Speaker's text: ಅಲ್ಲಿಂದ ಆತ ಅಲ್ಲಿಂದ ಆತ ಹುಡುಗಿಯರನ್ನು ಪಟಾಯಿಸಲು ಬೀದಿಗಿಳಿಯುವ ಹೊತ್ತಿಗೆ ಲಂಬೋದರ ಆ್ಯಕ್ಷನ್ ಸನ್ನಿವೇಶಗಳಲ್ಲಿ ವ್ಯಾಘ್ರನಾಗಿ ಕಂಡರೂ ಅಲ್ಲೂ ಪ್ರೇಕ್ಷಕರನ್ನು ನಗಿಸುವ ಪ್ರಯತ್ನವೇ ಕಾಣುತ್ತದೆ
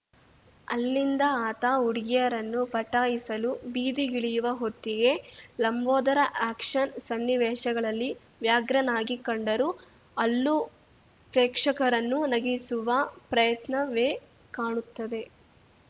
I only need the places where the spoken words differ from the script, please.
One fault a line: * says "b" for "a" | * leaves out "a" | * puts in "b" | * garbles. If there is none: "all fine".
* leaves out "ಅಲ್ಲಿಂದ ಆತ"